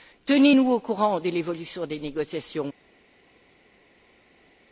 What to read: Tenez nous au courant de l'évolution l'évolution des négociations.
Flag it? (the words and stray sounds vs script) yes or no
yes